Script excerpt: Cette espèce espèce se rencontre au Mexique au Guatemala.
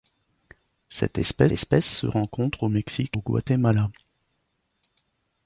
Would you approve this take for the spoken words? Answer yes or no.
yes